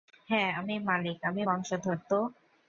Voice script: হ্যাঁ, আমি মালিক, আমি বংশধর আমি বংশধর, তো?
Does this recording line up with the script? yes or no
no